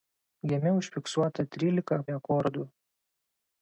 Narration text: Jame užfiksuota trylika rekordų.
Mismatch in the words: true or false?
false